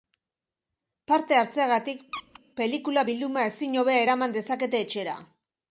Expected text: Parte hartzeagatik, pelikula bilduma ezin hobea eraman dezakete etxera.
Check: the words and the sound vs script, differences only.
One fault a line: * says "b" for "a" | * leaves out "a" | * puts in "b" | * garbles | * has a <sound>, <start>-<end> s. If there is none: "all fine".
* has a squeak, 2.1-2.4 s